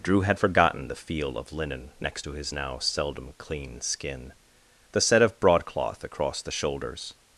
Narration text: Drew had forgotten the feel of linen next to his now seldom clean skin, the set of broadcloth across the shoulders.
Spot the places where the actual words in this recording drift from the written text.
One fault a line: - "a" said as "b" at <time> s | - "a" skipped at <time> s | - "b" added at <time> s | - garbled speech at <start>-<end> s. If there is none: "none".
none